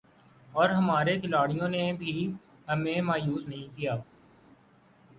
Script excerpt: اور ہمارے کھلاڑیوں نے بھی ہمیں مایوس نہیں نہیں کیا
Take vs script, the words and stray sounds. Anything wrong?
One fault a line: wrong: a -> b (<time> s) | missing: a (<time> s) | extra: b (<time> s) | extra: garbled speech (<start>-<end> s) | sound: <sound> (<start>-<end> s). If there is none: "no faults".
missing: نہیں (3.8 s)